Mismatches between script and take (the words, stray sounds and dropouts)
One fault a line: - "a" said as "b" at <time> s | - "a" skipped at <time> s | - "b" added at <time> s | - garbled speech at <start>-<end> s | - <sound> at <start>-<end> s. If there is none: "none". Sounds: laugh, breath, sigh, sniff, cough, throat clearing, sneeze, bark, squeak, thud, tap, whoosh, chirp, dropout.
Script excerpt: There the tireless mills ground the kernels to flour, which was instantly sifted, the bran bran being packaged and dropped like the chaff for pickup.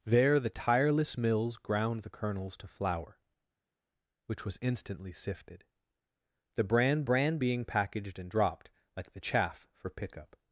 none